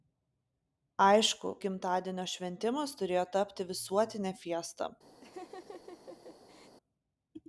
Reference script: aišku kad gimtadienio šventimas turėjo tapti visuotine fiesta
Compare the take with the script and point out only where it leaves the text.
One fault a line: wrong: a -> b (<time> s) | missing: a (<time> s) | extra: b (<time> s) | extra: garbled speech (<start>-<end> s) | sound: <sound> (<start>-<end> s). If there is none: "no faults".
missing: kad (1.5 s)
sound: laugh (5.2-6.8 s)